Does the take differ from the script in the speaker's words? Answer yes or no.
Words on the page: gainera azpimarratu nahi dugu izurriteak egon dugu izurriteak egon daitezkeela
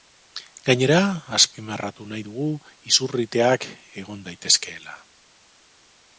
yes